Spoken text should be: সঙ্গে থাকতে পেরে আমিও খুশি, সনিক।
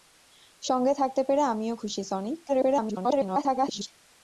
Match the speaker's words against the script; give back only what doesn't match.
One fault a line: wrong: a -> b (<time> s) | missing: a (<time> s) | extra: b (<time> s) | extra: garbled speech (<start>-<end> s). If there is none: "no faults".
extra: garbled speech (2.5-3.9 s)